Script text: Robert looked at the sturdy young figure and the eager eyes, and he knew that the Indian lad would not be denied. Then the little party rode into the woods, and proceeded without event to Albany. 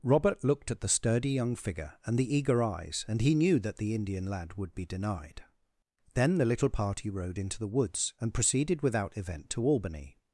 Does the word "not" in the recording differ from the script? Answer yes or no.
yes